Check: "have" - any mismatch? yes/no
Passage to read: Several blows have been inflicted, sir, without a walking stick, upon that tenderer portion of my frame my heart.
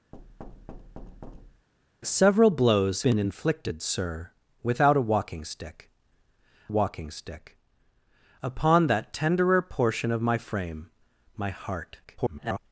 yes